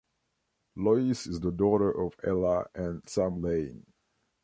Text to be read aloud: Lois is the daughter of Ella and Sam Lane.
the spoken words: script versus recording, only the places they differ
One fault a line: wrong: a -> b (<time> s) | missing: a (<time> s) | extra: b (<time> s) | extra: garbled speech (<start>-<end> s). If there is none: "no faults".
no faults